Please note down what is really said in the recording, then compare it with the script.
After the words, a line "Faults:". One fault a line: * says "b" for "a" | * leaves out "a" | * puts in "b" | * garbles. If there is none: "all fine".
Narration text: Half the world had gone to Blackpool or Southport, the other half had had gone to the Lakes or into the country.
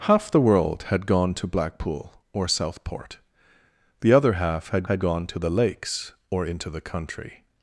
Half the world had gone to Blackpool or Southport, the other half had had gone to the Lakes or into the country.
Faults:
all fine